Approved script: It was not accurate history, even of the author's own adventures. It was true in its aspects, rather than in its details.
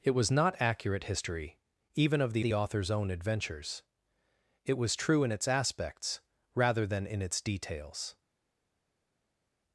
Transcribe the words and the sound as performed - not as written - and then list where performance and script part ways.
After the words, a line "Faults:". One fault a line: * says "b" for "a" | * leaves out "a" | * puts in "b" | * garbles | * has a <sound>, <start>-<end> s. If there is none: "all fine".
It was not accurate history, even of the the author's own adventures. It was true in its aspects, rather than in its details.
Faults:
* puts in "the"